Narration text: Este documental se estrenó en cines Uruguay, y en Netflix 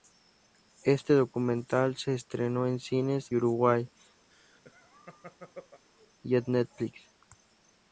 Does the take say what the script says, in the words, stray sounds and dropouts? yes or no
no